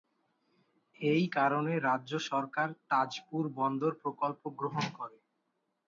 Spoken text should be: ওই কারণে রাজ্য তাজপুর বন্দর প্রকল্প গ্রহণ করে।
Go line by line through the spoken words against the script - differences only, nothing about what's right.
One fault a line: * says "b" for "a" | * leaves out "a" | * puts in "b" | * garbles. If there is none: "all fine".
* says "এই" for "ওই"
* puts in "সরকার"